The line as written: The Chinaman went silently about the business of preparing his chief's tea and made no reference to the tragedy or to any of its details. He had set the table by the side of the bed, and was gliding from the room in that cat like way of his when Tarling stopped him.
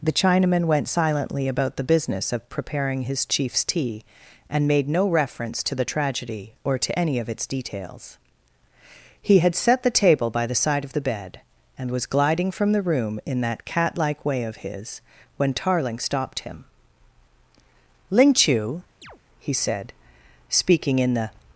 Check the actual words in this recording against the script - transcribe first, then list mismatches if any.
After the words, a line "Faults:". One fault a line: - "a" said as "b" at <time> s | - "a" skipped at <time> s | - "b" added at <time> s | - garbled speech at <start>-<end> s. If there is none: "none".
The Chinaman went silently about the business of preparing his chief's tea and made no reference to the tragedy or to any of its details. He had set the table by the side of the bed, and was gliding from the room in that cat like way of his when Tarling stopped him. "Ling Chu," he said, speaking in the
Faults:
- "Ling Chu he said speaking in the" added at 18.1 s